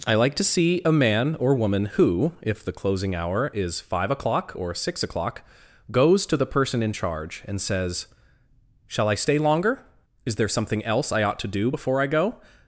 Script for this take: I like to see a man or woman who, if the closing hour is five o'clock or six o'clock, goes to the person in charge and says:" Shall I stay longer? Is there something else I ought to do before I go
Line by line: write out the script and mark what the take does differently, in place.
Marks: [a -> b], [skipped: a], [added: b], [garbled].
I like to see a man or woman who, if the closing hour is five o'clock or six o'clock, goes to the person in charge and says:" Shall I stay longer? Is there something else I ought to do before I go